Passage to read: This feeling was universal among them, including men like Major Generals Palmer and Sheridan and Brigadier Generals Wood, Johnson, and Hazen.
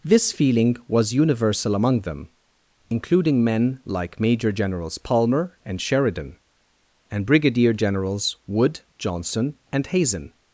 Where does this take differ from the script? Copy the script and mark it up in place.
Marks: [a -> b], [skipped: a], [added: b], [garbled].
This feeling was universal among them, including men like Major Generals Palmer and Sheridan and Brigadier Generals Wood, Johnson, and Hazen.